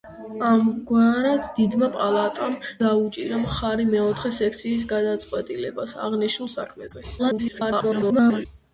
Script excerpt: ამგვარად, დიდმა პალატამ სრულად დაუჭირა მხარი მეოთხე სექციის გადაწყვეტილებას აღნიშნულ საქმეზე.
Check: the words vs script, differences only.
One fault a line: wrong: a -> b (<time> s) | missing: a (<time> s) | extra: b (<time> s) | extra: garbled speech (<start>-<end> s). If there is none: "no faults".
missing: სრულად (2.6 s)
extra: garbled speech (7.2-8.5 s)